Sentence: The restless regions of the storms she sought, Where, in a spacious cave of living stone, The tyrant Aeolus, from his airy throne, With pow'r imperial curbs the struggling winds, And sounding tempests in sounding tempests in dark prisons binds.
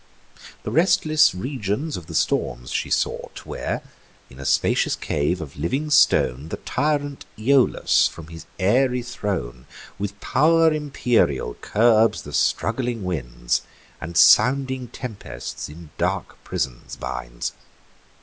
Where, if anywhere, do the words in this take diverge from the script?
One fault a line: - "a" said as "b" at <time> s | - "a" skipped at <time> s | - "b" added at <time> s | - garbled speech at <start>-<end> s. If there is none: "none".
- "sounding tempests in" skipped at 15.9 s